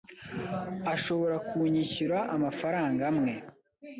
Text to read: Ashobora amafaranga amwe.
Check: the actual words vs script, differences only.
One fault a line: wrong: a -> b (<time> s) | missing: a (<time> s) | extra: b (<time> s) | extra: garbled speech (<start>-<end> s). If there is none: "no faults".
extra: kunyishyura (1.5 s)